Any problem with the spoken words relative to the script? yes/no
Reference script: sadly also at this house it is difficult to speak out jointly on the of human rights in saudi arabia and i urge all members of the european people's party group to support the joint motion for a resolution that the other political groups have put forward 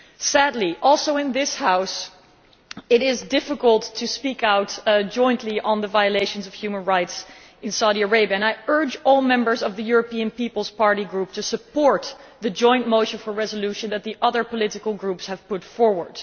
yes